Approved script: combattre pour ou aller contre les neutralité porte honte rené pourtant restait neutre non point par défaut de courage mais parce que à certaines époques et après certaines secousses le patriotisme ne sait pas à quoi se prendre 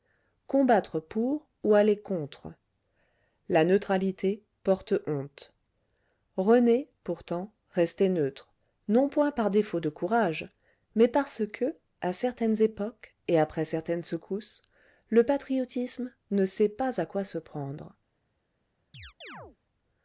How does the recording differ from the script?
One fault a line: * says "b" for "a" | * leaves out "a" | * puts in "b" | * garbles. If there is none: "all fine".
* says "la" for "les"